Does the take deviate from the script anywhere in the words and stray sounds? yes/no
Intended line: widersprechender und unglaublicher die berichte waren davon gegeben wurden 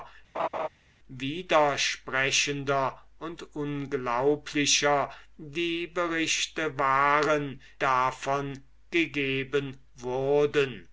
yes